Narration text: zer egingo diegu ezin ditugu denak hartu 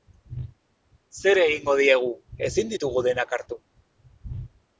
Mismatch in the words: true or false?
false